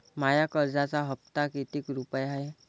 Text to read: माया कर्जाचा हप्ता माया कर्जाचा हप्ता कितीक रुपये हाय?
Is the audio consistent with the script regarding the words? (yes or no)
no